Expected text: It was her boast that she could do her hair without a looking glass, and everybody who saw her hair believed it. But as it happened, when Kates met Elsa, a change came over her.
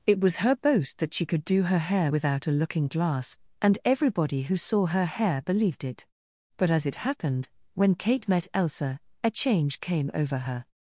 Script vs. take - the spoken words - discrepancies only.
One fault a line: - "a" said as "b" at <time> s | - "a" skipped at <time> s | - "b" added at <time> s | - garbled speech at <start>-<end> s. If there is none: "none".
- "Kates" said as "Kate" at 8.0 s